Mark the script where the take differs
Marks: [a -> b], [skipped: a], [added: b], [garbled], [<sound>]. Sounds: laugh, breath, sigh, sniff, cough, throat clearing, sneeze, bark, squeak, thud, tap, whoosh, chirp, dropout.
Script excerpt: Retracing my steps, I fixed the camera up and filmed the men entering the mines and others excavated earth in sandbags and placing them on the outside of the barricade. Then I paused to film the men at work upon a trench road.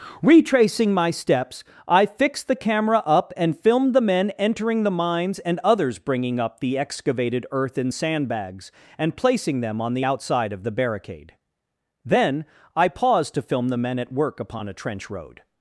Retracing my steps, I fixed the camera up and filmed the men entering the mines and others [added: bringing up the] excavated earth in sandbags and placing them on the outside of the barricade. Then I paused to film the men at work upon a trench road.